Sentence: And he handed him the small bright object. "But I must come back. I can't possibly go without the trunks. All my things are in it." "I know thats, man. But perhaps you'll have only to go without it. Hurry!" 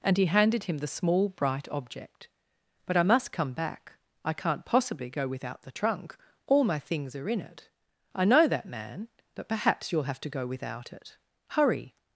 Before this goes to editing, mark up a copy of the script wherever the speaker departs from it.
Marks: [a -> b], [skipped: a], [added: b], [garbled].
And he handed him the small bright object. "But I must come back. I can't possibly go without the [trunks. -> trunk] All my things are in it." "I know [thats, -> that] man. But perhaps you'll have [skipped: only] to go without it. Hurry!"